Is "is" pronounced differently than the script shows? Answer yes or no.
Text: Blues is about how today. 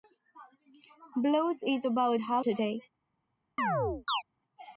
no